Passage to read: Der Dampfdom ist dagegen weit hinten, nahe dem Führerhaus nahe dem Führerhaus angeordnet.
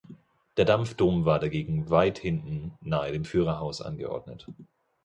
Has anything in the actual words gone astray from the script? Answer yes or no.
yes